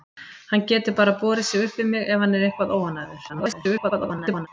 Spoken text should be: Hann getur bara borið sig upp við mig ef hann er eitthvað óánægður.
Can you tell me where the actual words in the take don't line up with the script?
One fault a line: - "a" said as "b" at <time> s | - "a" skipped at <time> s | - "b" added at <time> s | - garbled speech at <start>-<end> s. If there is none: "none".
- garbled speech at 3.3-4.5 s